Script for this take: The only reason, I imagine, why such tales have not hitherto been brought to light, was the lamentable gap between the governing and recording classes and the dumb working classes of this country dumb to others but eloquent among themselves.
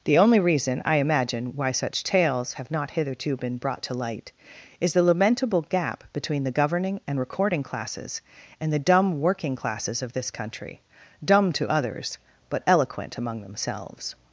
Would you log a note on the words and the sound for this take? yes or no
yes